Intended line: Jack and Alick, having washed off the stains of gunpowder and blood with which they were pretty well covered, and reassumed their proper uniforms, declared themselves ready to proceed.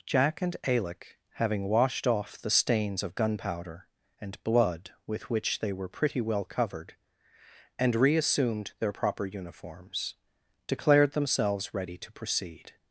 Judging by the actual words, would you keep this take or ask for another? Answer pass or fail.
pass